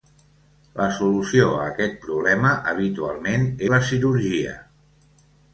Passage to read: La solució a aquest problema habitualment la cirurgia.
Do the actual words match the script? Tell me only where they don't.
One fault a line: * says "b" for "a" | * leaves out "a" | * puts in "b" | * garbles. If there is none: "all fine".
all fine